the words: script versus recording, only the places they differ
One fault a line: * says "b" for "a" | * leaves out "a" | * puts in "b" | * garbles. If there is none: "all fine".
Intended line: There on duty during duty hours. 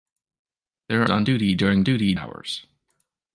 all fine